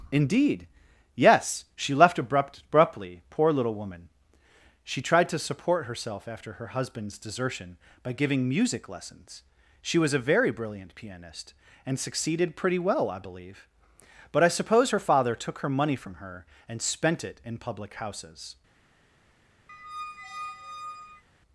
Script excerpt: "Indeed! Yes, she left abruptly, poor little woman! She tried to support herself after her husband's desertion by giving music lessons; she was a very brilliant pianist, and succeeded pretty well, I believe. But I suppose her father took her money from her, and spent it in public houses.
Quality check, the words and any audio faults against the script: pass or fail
fail